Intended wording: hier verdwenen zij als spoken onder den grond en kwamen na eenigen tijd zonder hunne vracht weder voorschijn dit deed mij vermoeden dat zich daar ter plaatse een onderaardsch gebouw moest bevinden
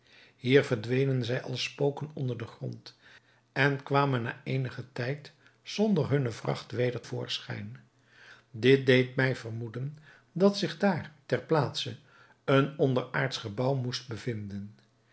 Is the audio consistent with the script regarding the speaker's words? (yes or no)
yes